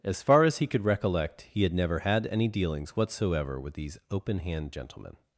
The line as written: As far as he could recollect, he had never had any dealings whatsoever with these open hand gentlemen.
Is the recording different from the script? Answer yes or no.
no